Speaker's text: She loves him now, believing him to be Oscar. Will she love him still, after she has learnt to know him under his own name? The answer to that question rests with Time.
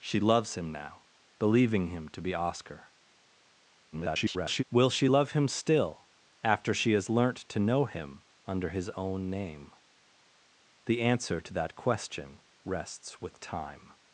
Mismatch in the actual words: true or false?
true